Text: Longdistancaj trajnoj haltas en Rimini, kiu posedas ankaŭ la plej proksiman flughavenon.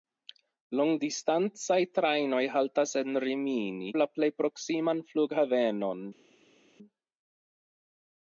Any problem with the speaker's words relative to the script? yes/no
yes